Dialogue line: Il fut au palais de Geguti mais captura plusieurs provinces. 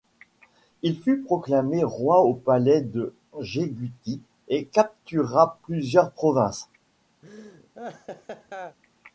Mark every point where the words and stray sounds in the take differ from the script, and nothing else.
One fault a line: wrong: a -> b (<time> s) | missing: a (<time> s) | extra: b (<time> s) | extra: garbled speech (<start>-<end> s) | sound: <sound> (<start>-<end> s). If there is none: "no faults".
extra: proclamé roi (1.2 s)
wrong: mais -> et (4.5 s)
sound: laugh (7.2-8.8 s)